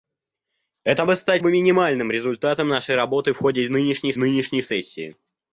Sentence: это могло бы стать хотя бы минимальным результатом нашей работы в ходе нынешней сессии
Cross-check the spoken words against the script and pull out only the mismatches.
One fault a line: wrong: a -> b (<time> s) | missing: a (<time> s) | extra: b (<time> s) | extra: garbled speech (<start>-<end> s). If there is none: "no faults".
missing: могло (1.1 s)
missing: хотя (1.4 s)
extra: нынешней (4.2 s)